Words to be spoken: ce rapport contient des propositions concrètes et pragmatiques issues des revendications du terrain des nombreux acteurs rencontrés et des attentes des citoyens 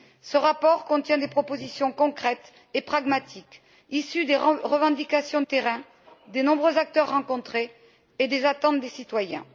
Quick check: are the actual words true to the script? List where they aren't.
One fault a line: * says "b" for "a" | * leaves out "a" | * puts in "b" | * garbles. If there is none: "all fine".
* leaves out "du"